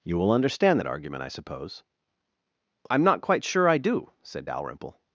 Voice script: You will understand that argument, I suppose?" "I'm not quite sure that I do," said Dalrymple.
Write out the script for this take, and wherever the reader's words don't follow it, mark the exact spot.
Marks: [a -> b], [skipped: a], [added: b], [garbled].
You will understand that argument, I suppose?" "I'm not quite sure [skipped: that] I do," said Dalrymple.